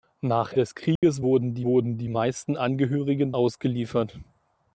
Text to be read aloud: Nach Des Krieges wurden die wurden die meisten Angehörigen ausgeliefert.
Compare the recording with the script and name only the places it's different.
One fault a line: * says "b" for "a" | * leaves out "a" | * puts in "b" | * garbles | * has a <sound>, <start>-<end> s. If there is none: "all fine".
* has a dropout, 1.0-1.0 s